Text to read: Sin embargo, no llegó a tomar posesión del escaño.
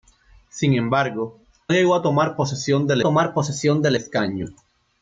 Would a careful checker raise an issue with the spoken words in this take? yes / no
yes